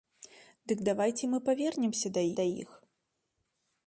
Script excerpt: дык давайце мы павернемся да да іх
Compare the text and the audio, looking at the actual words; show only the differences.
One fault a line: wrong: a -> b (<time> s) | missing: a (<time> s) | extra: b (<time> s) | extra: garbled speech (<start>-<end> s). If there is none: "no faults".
no faults